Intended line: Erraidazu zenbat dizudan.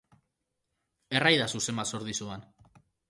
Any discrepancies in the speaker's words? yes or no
yes